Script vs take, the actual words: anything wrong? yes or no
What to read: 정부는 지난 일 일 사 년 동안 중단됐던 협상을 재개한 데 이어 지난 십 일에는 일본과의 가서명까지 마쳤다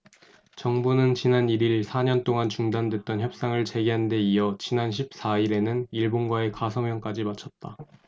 yes